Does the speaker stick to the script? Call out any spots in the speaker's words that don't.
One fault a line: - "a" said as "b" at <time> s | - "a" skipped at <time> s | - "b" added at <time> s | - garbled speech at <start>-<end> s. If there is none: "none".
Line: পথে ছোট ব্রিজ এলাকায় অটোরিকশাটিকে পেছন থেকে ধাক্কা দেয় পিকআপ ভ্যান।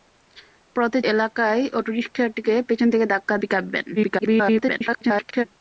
- "ছোট ব্রিজ" skipped at 1.0 s
- "দেয়" skipped at 3.4 s
- garbled speech at 4.0-5.4 s